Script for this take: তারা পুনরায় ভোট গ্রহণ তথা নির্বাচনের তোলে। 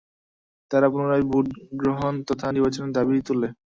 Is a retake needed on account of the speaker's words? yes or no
yes